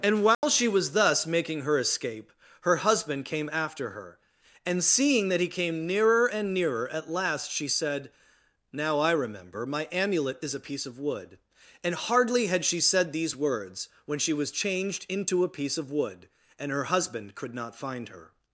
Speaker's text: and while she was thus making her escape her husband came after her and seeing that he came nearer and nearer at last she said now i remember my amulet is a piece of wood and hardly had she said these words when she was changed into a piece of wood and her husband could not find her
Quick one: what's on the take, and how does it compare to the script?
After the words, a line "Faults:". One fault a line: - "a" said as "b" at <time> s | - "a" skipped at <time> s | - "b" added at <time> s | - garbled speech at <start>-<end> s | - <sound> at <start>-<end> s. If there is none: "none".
and while she was thus making her escape her husband came after her and seeing that he came nearer and nearer at last she said now i remember my amulet is a piece of wood and hardly had she said these words when she was changed into a piece of wood and her husband could not find her
Faults:
- dropout at 0.3-0.4 s